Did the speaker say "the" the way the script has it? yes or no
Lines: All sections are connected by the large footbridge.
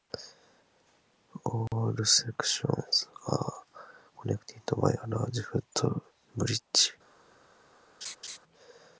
no